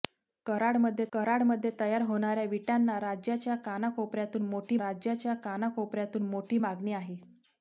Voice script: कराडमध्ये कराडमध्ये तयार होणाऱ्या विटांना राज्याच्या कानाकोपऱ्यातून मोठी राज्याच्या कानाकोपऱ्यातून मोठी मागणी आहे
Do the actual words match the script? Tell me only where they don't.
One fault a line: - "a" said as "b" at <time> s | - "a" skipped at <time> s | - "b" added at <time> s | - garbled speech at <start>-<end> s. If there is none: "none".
none